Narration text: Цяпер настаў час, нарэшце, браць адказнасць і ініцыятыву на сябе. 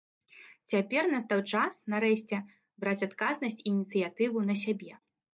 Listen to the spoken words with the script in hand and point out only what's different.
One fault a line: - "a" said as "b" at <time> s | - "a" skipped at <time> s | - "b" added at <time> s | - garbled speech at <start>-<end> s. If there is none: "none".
none